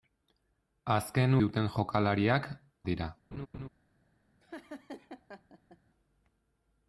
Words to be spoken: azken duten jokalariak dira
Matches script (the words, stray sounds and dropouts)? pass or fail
fail